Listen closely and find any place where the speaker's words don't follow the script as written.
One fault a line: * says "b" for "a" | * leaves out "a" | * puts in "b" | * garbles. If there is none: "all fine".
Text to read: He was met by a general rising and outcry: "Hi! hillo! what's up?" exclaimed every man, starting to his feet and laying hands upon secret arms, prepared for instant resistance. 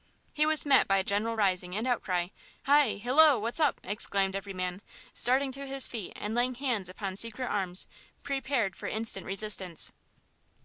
all fine